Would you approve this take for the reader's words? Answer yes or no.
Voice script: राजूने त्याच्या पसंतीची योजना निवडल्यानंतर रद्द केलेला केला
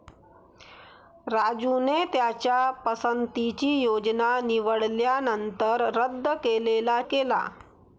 yes